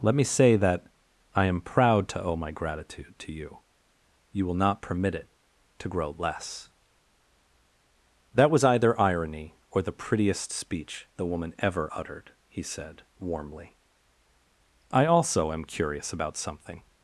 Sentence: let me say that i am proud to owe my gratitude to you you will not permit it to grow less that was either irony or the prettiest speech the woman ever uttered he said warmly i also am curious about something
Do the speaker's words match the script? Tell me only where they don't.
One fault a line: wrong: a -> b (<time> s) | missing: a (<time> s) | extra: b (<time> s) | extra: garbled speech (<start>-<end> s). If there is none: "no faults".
no faults